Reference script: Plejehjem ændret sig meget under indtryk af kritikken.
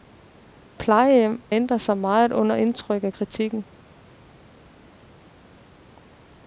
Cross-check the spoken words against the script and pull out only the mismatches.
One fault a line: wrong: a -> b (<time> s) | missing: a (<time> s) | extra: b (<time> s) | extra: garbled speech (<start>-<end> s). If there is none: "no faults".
no faults